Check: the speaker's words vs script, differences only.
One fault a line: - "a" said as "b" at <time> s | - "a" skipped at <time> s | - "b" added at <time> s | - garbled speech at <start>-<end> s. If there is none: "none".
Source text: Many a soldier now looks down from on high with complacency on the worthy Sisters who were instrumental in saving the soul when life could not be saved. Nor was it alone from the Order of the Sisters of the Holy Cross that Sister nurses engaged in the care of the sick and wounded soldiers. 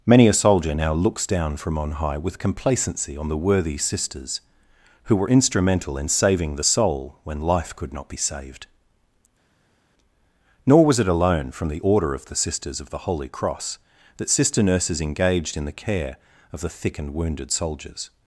- "sick" said as "thick" at 16.7 s